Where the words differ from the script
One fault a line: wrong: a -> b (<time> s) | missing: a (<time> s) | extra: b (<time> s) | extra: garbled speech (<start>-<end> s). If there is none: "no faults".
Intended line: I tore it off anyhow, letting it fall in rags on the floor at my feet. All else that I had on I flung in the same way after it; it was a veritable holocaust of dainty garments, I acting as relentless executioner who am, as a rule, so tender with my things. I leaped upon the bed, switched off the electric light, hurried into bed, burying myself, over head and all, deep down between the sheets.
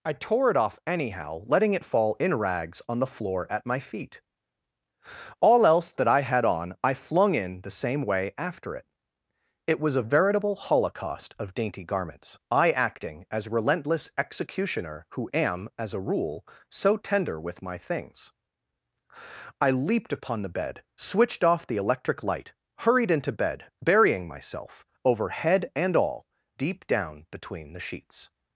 no faults